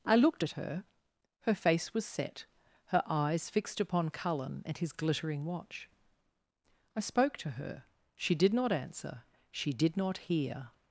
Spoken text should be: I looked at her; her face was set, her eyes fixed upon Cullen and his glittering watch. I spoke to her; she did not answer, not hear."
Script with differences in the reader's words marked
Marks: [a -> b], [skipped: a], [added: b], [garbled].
I looked at her; her face was set, her eyes fixed upon Cullen and his glittering watch. I spoke to her; she did not answer, [added: she did] not hear."